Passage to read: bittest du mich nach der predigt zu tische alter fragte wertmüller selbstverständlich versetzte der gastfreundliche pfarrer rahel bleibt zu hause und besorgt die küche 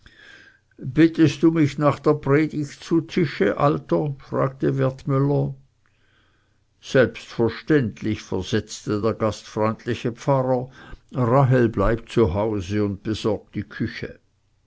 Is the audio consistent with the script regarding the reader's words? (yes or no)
yes